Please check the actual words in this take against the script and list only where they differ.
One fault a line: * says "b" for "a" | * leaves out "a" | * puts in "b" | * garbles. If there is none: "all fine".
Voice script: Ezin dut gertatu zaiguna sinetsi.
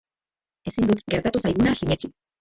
all fine